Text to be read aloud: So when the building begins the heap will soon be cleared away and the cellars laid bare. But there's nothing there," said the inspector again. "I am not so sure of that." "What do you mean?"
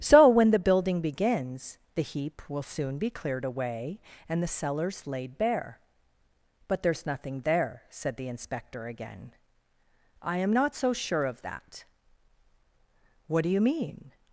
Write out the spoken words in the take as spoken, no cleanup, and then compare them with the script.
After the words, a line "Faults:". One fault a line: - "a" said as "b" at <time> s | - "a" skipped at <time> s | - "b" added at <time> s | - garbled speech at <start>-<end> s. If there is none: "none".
So when the building begins the heap will soon be cleared away and the cellars laid bare. But there's nothing there," said the inspector again. "I am not so sure of that." "What do you mean?"
Faults:
none